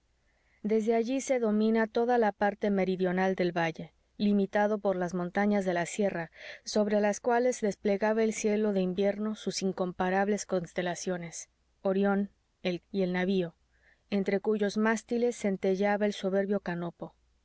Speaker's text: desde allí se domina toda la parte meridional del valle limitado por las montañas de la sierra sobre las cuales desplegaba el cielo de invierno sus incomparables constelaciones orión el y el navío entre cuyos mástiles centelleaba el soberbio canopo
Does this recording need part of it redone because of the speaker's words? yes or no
no